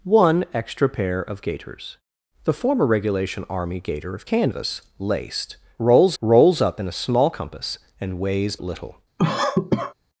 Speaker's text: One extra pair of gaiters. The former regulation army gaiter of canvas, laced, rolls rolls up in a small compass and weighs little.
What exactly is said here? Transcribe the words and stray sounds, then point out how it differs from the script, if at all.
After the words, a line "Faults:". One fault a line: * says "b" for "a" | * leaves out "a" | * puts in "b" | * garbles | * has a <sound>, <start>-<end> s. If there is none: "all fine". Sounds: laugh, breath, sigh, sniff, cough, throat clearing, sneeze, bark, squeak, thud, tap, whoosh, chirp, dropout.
One extra pair of gaiters. The former regulation army gaiter of canvas, laced, rolls rolls up in a small compass and weighs little.
Faults:
* has a cough, 9.2-9.9 s